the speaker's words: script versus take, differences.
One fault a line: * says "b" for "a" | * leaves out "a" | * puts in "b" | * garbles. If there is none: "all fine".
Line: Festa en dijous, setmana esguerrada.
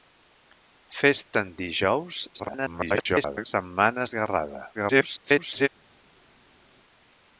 * garbles
* garbles